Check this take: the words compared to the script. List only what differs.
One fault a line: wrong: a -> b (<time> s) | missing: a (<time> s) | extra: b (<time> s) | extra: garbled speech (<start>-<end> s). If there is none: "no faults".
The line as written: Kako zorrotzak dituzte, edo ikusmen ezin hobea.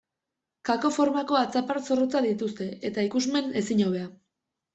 extra: formako atzapar (0.9 s)
wrong: edo -> eta (2.9 s)